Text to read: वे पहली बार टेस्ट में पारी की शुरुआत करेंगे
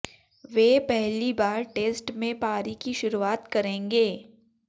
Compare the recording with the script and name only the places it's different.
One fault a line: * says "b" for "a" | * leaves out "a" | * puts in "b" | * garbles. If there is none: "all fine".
all fine